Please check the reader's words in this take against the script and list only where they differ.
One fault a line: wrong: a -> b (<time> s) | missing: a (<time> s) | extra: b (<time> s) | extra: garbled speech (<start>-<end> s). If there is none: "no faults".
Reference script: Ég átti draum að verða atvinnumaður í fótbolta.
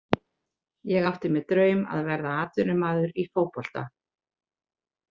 extra: mér (1.4 s)